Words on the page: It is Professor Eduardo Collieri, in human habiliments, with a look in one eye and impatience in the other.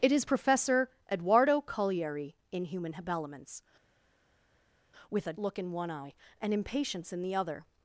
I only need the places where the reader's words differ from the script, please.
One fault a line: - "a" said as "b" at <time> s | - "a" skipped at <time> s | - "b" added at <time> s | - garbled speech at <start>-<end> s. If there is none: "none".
none